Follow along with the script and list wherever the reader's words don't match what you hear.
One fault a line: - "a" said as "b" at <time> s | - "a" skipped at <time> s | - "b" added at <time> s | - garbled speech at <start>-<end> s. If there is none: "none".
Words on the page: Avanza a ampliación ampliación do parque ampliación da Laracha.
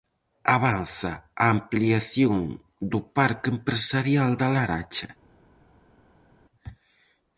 - "ampliación" skipped at 2.4 s
- "ampliación" said as "empresarial" at 3.5 s